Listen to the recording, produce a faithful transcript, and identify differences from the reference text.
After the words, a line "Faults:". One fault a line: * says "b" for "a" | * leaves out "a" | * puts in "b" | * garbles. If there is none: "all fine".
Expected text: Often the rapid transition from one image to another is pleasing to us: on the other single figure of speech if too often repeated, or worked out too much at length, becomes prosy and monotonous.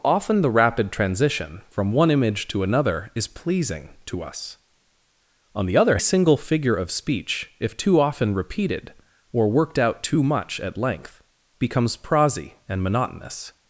Often the rapid transition from one image to another is pleasing to us: on the other single figure of speech if too often repeated, or worked out too much at length, becomes prosy and monotonous.
Faults:
all fine